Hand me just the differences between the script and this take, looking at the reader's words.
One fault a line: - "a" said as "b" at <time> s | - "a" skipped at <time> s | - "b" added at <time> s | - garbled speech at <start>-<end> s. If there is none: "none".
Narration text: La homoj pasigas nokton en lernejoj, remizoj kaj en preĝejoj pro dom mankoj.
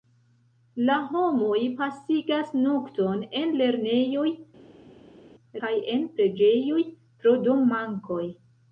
- "remizoj" skipped at 4.3 s